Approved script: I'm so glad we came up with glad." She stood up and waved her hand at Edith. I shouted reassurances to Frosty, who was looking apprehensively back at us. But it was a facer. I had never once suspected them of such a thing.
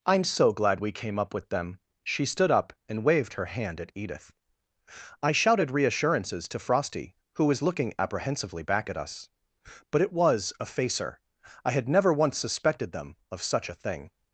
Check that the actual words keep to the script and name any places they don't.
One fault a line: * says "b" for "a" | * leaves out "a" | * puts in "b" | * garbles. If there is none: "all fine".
* says "them" for "glad"